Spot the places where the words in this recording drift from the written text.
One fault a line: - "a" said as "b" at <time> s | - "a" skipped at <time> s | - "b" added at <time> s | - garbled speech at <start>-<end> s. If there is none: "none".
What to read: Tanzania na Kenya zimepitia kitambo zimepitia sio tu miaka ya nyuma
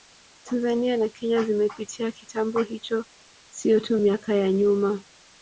- "zimepitia" said as "hicho" at 2.6 s